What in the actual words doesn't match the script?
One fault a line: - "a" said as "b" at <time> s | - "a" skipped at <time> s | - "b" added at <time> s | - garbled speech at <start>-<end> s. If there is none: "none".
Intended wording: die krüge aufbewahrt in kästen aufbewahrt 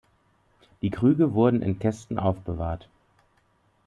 - "aufbewahrt" said as "wurden" at 1.3 s